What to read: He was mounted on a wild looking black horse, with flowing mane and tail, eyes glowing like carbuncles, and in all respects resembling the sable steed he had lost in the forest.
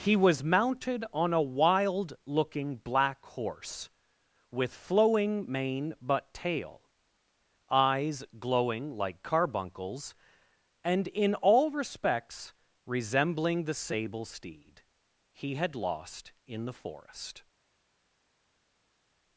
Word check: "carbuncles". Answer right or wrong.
right